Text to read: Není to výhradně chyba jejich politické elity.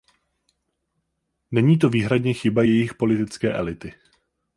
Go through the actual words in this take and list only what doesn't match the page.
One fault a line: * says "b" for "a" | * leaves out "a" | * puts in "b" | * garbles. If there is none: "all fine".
all fine